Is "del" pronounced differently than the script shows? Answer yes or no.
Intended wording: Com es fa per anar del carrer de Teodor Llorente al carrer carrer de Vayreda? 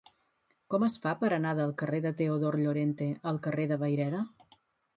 no